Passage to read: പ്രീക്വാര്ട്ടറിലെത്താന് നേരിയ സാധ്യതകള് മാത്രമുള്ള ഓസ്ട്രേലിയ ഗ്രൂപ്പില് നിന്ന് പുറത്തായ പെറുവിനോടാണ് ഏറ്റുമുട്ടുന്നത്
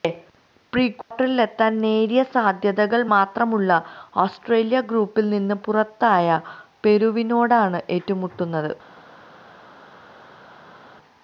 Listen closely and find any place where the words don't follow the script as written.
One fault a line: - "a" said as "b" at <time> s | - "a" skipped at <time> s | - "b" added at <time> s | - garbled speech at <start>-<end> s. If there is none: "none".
none